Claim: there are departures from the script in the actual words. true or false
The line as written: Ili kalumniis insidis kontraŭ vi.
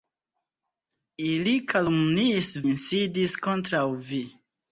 false